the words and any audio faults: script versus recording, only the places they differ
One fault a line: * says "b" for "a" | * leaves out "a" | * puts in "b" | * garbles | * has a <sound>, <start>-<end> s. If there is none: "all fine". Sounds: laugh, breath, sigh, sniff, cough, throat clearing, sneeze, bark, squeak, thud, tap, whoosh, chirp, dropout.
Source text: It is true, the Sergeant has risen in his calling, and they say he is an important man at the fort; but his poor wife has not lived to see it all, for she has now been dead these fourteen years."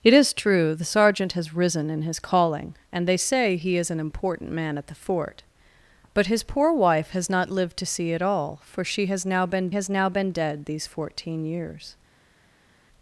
* puts in "has now been"